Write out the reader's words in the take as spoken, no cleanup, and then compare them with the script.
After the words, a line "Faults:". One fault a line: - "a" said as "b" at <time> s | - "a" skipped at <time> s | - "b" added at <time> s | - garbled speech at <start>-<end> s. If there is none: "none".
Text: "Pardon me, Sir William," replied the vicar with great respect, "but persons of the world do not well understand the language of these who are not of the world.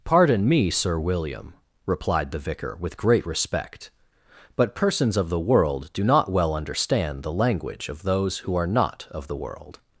"Pardon me, Sir William," replied the vicar with great respect, "but persons of the world do not well understand the language of those who are not of the world.
Faults:
- "these" said as "those" at 8.0 s